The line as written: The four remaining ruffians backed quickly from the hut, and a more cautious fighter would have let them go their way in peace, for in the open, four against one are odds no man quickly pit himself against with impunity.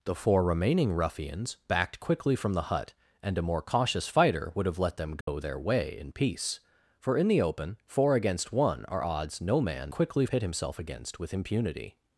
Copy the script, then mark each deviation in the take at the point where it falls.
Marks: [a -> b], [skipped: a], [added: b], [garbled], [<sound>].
The four remaining ruffians backed quickly from the hut, and a more cautious fighter would have let them go [dropout] their way in peace, for in the open, four against one are odds no man quickly pit himself against with impunity.